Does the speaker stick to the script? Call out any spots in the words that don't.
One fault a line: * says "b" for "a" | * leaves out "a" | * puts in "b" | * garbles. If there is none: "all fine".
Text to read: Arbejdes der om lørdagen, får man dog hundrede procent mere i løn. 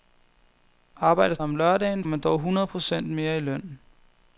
* leaves out "der"
* leaves out "får"